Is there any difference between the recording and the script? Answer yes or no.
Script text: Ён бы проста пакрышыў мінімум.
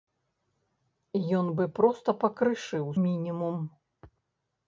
no